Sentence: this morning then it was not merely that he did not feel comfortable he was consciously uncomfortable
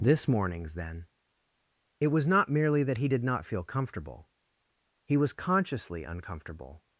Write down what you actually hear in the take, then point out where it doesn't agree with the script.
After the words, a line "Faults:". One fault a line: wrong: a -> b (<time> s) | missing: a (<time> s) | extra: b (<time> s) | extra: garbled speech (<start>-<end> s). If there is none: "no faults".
this mornings then it was not merely that he did not feel comfortable he was consciously uncomfortable
Faults:
wrong: morning -> mornings (0.3 s)